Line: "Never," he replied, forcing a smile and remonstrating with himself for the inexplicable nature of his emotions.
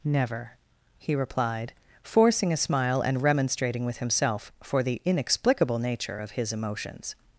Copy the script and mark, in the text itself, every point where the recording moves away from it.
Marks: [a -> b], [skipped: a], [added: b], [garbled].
"Never," he replied, forcing a smile and remonstrating with himself for the inexplicable nature of his emotions.